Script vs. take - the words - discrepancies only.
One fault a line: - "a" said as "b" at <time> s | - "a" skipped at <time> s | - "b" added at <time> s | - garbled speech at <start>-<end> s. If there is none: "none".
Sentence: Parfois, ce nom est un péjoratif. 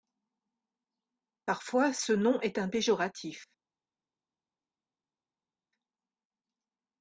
none